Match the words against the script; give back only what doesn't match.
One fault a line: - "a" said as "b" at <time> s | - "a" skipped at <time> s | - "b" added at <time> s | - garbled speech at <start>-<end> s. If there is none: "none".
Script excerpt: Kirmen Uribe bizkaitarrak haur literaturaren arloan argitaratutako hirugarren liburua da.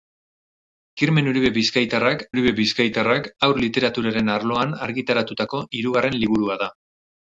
- "Uribe bizkaitarrak" added at 2.3 s